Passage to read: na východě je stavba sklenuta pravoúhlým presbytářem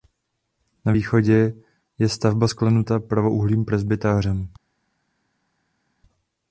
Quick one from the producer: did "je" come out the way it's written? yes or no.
yes